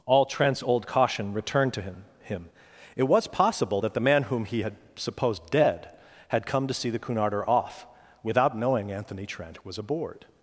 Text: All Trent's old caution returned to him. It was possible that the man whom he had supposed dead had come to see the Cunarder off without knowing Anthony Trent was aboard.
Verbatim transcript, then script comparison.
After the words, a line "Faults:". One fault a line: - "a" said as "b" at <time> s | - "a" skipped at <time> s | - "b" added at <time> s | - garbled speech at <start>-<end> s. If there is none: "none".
All Trent's old caution returned to him him. It was possible that the man whom he had supposed dead had come to see the Cunarder off without knowing Anthony Trent was aboard.
Faults:
- "him" added at 2.2 s